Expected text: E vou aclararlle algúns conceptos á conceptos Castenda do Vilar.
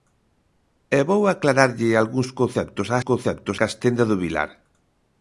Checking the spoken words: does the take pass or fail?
pass